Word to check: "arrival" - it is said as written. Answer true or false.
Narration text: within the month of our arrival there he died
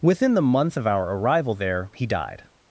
true